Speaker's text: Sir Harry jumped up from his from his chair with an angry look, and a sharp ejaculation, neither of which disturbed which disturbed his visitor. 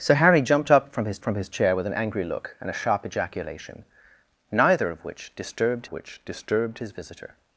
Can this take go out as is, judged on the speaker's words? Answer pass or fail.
pass